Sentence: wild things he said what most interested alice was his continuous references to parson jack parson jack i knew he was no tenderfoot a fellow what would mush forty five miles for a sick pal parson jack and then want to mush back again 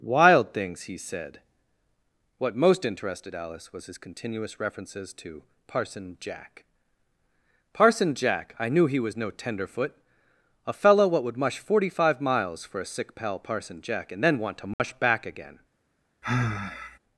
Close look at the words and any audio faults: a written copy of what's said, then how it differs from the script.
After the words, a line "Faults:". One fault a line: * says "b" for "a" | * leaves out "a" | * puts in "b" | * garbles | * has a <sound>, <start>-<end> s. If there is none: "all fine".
wild things he said what most interested alice was his continuous references to parson jack parson jack i knew he was no tenderfoot a fellow what would mush forty five miles for a sick pal parson jack and then want to mush back again
Faults:
* has a dropout, 14.7-14.8 s
* has a sigh, 16.2-17.0 s